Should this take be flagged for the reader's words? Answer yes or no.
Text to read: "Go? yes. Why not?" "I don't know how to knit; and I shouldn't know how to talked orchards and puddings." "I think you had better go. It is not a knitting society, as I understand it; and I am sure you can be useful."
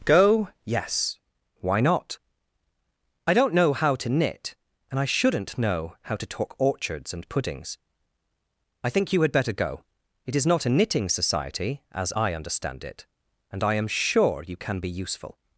yes